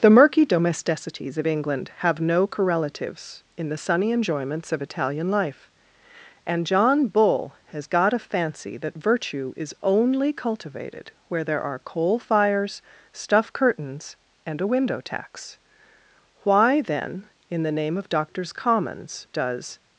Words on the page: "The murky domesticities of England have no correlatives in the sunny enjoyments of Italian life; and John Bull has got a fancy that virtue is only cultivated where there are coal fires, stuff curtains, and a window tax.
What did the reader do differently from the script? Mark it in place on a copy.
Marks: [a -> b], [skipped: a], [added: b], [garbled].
"The murky domesticities of England have no correlatives in the sunny enjoyments of Italian life; and John Bull has got a fancy that virtue is only cultivated where there are coal fires, stuff curtains, and a window tax. [added: Why then in the name of Doctors Commons does]